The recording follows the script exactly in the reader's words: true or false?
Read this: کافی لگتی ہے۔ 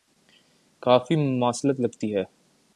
false